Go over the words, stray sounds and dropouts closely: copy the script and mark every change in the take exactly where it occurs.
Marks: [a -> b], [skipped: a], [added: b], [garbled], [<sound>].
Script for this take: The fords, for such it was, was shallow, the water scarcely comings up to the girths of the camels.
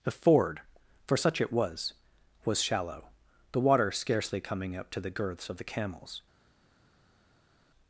The [fords, -> ford] for such it was, was shallow, the water scarcely [comings -> coming] up to the girths of the camels.